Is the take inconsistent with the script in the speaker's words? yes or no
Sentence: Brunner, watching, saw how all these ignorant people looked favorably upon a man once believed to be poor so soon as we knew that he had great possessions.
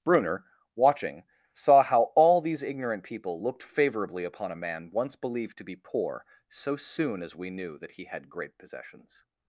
no